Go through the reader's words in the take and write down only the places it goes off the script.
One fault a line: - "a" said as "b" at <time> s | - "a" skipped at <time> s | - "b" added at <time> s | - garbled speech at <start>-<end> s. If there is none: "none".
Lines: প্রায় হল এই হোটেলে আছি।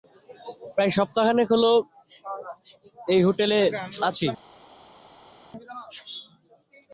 - "সপ্তাহখানেক" added at 1.0 s